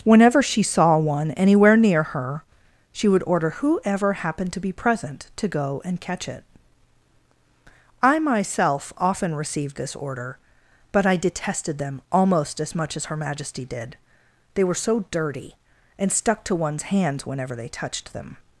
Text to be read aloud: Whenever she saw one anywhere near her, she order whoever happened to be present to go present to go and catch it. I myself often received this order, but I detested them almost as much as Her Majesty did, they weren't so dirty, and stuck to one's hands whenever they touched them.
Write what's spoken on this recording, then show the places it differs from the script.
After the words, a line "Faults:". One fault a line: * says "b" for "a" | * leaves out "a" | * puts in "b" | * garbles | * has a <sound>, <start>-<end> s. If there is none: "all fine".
Whenever she saw one anywhere near her, she would order whoever happened to be present to go and catch it. I myself often received this order, but I detested them almost as much as Her Majesty did, they were so dirty, and stuck to one's hands whenever they touched them.
Faults:
* puts in "would"
* leaves out "present to go"
* says "were" for "weren't"